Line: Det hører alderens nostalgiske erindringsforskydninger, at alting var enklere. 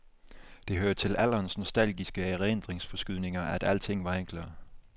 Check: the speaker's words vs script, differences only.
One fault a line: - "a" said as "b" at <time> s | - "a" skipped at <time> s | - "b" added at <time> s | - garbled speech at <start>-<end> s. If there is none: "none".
- "til" added at 0.9 s